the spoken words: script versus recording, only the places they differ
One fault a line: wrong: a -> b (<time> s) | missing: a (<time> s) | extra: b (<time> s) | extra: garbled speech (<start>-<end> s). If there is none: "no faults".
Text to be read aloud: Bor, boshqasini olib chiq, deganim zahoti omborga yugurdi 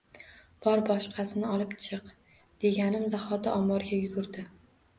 no faults